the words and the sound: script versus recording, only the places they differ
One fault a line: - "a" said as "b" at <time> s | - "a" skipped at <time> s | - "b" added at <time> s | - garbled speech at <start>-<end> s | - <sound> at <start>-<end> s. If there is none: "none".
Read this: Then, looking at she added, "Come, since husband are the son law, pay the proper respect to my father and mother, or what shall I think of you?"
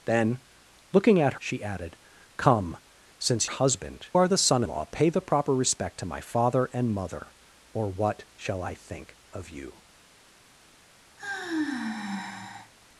- sigh at 11.2-12.7 s